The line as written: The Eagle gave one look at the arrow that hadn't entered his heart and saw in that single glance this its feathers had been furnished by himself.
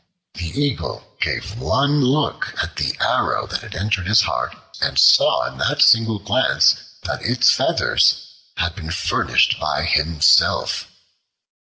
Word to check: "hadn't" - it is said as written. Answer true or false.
false